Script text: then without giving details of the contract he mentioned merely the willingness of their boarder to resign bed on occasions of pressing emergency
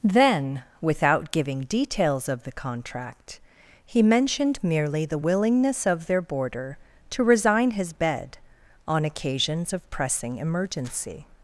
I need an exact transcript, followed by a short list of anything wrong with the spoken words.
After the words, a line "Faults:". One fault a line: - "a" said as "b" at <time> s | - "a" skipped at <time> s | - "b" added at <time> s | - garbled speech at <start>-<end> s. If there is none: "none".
then without giving details of the contract he mentioned merely the willingness of their boarder to resign his bed on occasions of pressing emergency
Faults:
- "his" added at 7.7 s